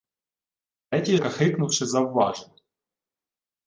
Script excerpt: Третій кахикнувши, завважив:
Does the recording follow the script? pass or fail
pass